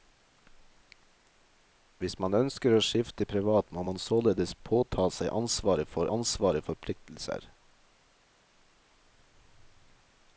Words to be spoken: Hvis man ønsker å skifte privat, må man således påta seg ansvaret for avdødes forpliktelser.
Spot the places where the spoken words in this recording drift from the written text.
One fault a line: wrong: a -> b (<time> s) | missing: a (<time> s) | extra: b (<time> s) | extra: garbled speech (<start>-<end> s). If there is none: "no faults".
wrong: avdødes -> ansvaret (6.1 s)